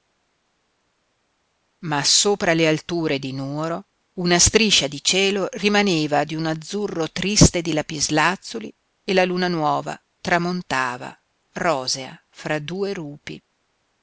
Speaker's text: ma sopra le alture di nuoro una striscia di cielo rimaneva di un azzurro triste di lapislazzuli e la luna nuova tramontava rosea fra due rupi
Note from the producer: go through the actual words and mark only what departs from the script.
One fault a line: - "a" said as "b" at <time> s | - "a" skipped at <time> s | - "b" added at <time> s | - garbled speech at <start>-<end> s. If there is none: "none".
none